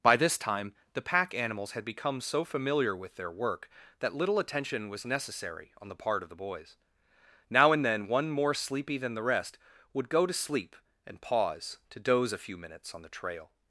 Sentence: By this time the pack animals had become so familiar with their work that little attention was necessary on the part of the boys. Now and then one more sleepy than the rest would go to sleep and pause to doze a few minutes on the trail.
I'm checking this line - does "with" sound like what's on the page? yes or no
yes